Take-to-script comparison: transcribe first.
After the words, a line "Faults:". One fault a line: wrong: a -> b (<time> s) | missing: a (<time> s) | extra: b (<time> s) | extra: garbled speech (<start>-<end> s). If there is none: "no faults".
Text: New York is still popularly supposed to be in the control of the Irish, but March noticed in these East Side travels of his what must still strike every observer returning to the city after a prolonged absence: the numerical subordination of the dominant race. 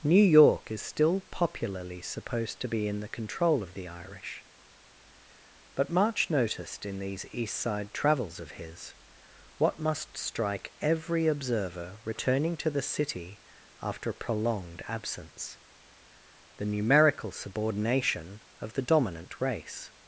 New York is still popularly supposed to be in the control of the Irish, but March noticed in these East Side travels of his what must strike every observer returning to the city after a prolonged absence: the numerical subordination of the dominant race.
Faults:
missing: still (10.2 s)